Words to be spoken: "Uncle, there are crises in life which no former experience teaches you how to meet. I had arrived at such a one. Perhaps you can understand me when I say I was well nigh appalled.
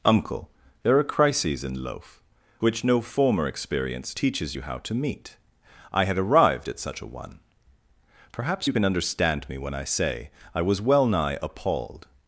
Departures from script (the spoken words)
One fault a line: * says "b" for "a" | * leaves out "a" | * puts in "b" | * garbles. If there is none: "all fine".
* says "loaf" for "life"